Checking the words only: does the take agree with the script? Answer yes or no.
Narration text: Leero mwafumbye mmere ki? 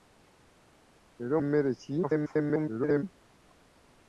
no